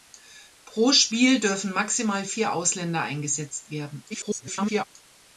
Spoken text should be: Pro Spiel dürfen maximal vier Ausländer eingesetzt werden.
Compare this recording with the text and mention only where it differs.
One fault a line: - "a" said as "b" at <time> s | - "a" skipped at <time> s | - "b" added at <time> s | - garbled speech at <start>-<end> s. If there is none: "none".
- garbled speech at 4.1-4.8 s